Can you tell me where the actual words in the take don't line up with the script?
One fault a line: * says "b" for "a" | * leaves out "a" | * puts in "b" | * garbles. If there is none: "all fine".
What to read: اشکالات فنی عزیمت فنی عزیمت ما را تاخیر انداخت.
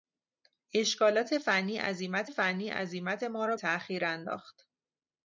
all fine